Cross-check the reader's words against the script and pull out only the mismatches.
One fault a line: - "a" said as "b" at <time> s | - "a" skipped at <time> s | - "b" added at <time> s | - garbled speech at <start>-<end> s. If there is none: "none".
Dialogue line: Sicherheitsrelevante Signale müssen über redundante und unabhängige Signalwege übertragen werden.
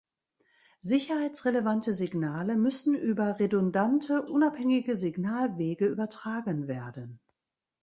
- "und" skipped at 4.2 s